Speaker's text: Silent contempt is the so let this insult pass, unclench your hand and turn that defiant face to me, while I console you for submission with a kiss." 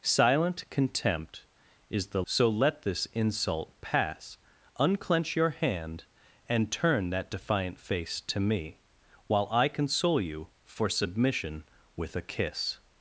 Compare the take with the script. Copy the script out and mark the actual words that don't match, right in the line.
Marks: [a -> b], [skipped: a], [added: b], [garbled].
Silent contempt is the so let this insult pass, unclench your hand and turn that defiant face to me, while I console you for submission with a kiss."